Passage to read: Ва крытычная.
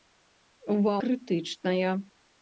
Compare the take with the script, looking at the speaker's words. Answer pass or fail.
pass